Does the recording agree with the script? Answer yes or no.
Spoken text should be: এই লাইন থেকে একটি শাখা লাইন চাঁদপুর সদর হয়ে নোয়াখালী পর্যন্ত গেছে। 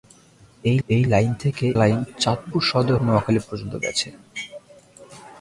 no